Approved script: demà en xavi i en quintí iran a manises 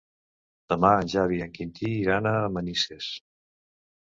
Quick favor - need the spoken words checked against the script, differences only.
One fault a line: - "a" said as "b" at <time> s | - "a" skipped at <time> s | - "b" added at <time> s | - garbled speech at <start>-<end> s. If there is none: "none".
none